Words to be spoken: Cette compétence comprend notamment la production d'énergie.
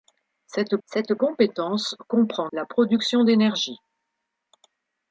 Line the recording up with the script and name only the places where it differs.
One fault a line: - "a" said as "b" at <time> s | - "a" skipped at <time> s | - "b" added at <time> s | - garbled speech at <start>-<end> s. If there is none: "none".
- "cette" added at 0.9 s
- "notamment" skipped at 2.5 s